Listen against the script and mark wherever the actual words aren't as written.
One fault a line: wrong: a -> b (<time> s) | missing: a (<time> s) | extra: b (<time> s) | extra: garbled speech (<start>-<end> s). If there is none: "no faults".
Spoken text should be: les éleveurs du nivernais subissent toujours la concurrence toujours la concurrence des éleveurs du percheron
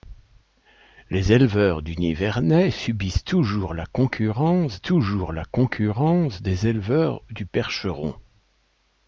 no faults